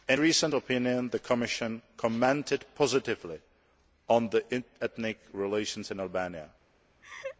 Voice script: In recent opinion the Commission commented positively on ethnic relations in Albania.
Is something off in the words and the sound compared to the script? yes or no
yes